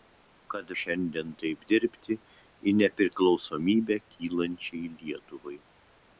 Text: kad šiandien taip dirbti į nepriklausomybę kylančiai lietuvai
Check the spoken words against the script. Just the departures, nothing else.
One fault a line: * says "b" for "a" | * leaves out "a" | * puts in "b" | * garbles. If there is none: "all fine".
all fine